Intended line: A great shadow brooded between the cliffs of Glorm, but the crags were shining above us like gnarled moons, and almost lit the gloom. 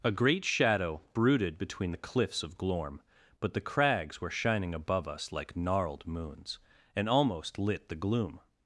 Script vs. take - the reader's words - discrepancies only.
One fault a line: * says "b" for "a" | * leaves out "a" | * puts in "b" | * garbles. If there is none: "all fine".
all fine